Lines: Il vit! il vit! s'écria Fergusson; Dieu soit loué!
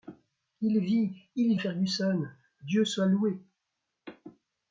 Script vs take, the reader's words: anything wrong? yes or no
yes